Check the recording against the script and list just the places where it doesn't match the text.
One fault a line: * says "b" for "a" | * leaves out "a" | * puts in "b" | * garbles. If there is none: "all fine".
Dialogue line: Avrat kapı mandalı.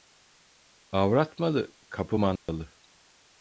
* puts in "malı"